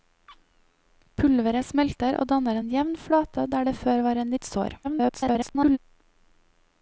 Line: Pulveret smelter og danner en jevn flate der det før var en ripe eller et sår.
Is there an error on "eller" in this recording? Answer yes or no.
yes